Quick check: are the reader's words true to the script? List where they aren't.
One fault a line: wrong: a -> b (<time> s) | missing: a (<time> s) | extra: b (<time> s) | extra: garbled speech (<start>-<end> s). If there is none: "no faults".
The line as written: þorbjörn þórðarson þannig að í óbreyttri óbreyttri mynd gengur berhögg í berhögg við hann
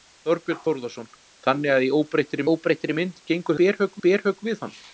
no faults